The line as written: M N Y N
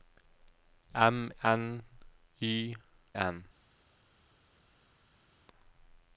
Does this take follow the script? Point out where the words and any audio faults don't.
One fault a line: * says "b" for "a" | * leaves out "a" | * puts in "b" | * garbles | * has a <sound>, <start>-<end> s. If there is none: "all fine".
all fine